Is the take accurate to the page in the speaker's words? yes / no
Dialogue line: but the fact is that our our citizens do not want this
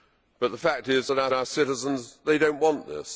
yes